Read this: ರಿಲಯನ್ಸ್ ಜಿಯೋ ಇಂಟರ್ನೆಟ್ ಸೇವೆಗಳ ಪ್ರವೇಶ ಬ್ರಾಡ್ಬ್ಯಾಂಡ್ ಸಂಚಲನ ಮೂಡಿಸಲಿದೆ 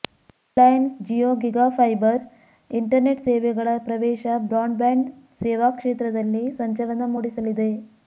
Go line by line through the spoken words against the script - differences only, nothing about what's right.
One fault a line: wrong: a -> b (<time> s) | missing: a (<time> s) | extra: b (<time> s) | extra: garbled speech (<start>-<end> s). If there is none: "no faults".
extra: ಗಿಗಾಫೈಬರ್ (1.4 s)
extra: ಸೇವಾ ಕ್ಷೇತ್ರದಲ್ಲಿ (5.4 s)